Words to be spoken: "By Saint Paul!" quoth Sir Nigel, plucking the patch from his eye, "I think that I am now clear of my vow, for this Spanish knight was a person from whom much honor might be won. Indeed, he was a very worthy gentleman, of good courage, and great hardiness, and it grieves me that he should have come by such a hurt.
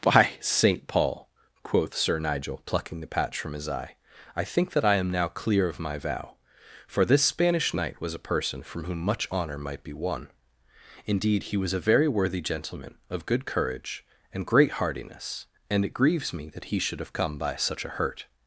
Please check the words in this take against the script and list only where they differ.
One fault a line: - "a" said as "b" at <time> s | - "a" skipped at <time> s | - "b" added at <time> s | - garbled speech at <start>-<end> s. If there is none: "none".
none